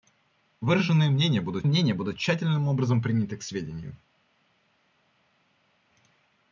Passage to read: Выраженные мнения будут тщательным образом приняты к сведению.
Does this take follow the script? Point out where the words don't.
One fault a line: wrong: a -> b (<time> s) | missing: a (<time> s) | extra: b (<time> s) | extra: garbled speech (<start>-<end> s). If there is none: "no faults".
extra: мнения будут (1.7 s)